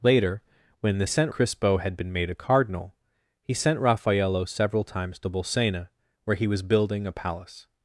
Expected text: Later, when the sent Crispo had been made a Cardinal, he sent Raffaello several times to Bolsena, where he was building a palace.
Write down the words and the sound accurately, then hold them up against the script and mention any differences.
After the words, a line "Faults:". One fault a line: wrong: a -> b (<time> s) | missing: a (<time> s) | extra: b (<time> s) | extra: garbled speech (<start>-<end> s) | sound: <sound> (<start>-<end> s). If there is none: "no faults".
Later, when the sent Crispo had been made a Cardinal, he sent Raffaello several times to Bolsena, where he was building a palace.
Faults:
no faults